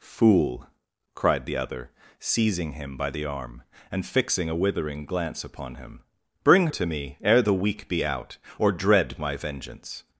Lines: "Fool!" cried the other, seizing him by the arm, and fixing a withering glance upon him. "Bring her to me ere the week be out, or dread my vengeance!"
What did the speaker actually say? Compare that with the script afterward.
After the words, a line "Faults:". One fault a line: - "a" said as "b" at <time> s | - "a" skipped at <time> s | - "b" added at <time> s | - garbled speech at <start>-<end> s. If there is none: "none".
"Fool!" cried the other, seizing him by the arm, and fixing a withering glance upon him. "Bring to me ere the week be out, or dread my vengeance!"
Faults:
- "her" skipped at 6.7 s